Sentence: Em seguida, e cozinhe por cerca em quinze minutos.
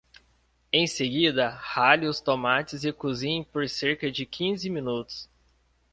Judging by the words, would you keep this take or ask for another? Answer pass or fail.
fail